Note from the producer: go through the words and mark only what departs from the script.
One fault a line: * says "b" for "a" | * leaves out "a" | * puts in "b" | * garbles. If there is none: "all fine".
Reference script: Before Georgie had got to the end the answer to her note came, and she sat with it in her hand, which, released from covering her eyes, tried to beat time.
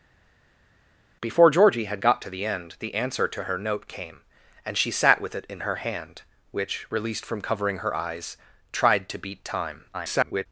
* garbles